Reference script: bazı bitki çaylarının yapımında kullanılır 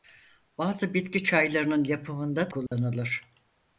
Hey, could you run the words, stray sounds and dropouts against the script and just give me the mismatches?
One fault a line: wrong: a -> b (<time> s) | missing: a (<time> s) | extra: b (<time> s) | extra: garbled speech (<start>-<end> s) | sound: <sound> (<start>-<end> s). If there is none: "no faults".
sound: dropout (2.7-2.7 s)